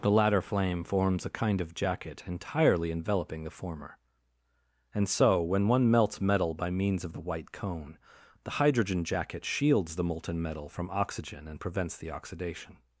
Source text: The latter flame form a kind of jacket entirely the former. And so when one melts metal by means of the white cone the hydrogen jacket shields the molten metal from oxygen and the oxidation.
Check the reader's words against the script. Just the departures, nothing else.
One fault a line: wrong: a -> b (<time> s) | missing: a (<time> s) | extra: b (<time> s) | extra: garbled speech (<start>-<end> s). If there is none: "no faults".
wrong: form -> forms (0.8 s)
extra: enveloping (2.9 s)
extra: prevents (11.6 s)